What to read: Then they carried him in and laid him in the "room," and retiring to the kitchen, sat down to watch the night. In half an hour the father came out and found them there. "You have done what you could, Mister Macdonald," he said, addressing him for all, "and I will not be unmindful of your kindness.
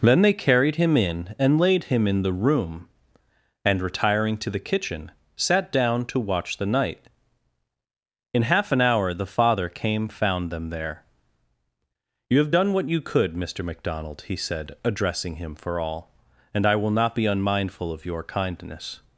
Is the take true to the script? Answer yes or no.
no